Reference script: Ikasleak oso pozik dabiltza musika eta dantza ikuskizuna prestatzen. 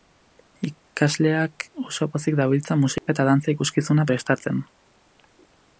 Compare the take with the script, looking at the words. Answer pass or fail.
pass